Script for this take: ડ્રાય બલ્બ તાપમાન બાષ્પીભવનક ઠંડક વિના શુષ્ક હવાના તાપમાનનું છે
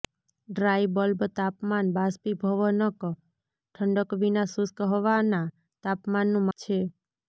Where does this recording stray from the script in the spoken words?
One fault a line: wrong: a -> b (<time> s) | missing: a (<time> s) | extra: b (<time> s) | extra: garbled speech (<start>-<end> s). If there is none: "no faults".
no faults